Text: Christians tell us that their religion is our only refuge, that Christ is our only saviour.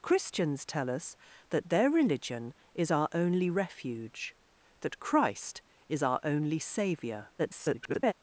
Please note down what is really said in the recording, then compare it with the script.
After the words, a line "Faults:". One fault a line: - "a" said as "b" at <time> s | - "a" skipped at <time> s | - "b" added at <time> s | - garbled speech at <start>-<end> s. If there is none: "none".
Christians tell us that their religion is our only refuge, that Christ is our only saviour. [garbled]
Faults:
- garbled speech at 7.4-8.1 s